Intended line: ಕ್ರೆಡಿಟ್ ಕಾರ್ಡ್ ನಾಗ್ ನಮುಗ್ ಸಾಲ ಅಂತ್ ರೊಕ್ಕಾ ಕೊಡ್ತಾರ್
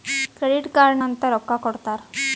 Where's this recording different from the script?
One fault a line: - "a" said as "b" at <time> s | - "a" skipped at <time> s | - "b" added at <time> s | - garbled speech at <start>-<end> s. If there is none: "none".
- "ನಾಗ್ ನಮುಗ್ ಸಾಲ" skipped at 1.0 s